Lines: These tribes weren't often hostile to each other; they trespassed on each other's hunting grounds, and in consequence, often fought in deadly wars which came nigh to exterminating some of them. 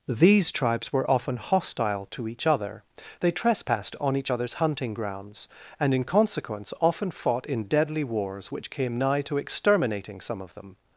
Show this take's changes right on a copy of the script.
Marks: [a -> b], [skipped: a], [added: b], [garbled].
These tribes [weren't -> were] often hostile to each other; they trespassed on each other's hunting grounds, and in consequence, often fought in deadly wars which came nigh to exterminating some of them.